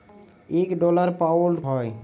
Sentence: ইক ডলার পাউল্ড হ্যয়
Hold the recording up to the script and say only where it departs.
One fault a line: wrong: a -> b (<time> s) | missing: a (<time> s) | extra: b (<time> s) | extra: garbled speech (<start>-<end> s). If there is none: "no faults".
no faults